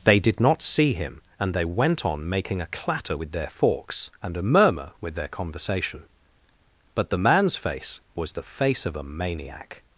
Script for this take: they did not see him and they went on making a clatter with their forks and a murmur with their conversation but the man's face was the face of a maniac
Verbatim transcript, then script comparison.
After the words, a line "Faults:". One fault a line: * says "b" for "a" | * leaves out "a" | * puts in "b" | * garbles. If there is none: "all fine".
they did not see him and they went on making a clatter with their forks and a murmur with their conversation but the man's face was the face of a maniac
Faults:
all fine